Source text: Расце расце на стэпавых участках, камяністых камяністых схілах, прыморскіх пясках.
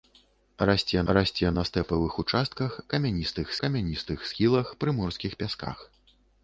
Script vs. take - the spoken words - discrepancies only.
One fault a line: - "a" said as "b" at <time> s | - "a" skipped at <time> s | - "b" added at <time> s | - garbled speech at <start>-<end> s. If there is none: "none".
none